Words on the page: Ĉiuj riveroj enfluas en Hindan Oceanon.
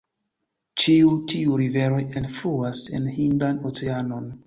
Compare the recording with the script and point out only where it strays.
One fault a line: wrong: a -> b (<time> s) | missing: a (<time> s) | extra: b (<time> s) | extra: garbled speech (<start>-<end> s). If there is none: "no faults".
extra: tiuj (1.4 s)